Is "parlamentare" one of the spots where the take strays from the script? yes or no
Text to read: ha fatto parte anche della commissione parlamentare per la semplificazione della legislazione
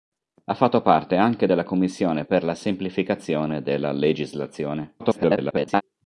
yes